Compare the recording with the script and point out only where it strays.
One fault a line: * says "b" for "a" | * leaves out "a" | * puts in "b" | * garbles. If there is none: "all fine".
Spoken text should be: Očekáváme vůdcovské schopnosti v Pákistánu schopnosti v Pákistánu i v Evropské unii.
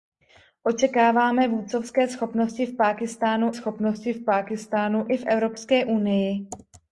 all fine